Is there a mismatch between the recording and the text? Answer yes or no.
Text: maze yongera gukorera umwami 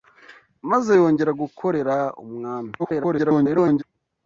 yes